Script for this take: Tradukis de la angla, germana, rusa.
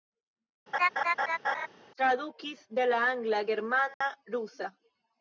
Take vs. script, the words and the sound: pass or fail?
fail